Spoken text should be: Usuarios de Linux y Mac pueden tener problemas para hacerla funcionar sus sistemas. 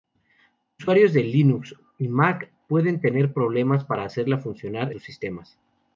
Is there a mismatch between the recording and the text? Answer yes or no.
no